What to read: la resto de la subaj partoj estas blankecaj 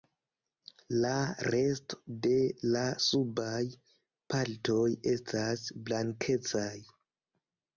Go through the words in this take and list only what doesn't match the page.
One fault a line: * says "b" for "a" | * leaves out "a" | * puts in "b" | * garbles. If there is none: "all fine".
all fine